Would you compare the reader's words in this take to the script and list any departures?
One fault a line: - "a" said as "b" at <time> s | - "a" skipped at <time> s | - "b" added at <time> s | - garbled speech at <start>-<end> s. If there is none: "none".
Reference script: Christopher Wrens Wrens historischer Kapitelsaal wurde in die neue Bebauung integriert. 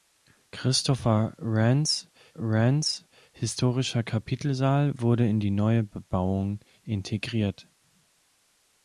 none